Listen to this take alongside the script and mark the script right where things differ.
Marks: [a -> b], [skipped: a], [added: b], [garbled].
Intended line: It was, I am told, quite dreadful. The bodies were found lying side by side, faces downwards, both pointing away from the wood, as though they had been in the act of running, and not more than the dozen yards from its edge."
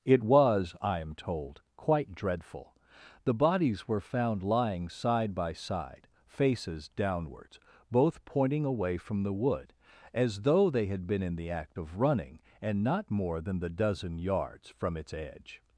It was, I am told, quite dreadful. The bodies were found lying side by side, faces downwards, both pointing away from the wood, as though they had been in the act of running, and not more than the dozen yards from its edge."